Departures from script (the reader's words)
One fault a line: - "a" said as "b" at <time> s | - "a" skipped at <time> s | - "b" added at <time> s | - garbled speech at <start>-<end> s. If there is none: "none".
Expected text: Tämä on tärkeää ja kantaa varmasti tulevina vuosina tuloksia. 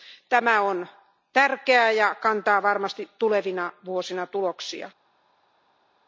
none